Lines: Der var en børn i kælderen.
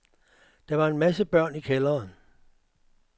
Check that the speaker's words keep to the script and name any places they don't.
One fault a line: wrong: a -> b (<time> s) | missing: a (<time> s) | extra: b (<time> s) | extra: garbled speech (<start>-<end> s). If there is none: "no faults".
extra: masse (1.0 s)